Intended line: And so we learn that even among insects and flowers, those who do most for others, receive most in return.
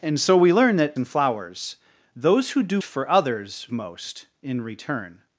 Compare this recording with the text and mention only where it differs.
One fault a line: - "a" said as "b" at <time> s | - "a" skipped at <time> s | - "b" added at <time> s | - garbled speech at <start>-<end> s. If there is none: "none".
- "even among insects" skipped at 0.9 s
- "most" skipped at 2.8 s
- "receive" skipped at 3.7 s